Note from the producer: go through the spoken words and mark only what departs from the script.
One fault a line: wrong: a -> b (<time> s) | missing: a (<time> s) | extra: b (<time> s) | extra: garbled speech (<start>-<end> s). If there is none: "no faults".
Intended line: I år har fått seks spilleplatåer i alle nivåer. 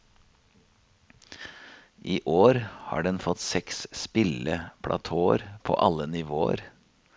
extra: den (3.0 s)
wrong: i -> på (5.6 s)